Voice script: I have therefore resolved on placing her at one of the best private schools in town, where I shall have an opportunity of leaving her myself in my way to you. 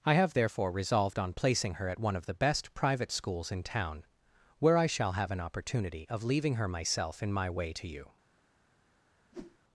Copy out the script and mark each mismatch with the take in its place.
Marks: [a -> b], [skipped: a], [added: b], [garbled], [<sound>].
I have therefore resolved on placing her at one of the best private schools in town, where I shall have an opportunity of leaving her myself in my way to you. [whoosh]